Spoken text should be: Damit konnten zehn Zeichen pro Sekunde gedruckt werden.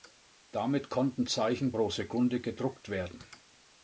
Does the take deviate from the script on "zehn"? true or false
true